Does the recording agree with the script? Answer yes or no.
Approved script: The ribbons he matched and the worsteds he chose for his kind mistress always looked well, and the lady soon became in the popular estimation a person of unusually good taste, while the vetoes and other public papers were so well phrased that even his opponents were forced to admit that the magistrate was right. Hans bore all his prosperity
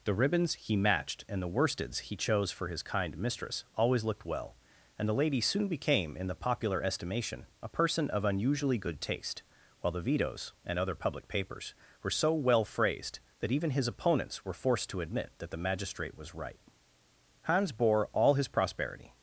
yes